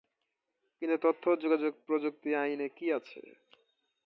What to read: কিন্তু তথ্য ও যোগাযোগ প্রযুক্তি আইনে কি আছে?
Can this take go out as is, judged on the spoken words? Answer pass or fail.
pass